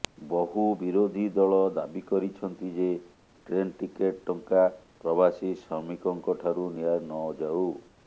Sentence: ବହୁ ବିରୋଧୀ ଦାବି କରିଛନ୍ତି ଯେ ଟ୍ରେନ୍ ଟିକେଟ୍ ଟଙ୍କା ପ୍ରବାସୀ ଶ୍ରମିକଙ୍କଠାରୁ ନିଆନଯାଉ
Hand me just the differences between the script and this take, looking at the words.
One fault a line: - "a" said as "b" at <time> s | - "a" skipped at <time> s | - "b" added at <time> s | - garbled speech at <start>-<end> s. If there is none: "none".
- "ଦଳ" added at 1.4 s